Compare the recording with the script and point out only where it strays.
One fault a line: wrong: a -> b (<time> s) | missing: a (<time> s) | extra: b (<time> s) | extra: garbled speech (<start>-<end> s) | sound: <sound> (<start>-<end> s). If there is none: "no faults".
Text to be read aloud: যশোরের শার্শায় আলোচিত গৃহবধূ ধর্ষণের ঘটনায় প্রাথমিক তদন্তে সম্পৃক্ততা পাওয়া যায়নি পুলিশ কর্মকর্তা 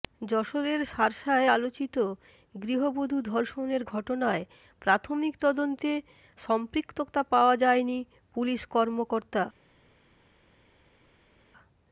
no faults